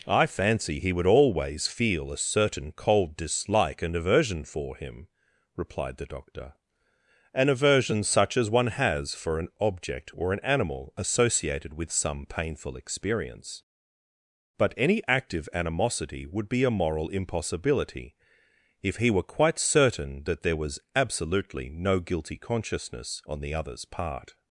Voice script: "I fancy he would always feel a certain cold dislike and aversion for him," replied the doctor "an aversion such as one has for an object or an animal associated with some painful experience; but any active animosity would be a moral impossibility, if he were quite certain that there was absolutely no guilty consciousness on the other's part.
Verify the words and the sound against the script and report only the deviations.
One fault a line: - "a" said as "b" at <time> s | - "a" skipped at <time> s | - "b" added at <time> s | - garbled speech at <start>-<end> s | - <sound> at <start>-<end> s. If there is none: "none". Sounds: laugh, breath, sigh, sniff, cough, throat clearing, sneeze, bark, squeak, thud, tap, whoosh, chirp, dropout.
none